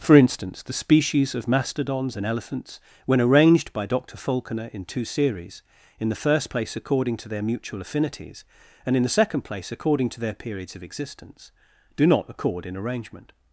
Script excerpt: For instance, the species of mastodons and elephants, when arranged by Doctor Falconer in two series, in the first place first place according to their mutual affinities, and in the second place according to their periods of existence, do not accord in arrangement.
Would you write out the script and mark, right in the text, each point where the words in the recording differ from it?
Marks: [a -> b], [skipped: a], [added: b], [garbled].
For instance, the species of mastodons and elephants, when arranged by Doctor Falconer in two series, in the first place [skipped: first place] according to their mutual affinities, and in the second place according to their periods of existence, do not accord in arrangement.